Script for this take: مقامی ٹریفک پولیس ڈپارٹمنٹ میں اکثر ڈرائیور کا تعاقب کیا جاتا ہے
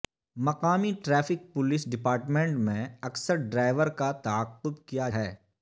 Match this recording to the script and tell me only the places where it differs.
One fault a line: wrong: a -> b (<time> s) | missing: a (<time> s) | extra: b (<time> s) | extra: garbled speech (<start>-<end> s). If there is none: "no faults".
missing: جاتا (5.1 s)